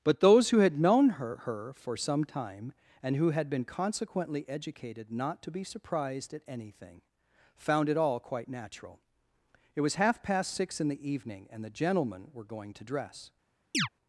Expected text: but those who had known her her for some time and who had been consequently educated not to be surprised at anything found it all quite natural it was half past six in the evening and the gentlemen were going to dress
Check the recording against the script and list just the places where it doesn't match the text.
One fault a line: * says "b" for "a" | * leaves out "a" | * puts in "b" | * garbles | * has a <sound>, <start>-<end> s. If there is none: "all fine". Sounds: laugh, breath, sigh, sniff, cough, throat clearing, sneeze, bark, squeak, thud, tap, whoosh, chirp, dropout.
* has a chirp, 13.7-13.9 s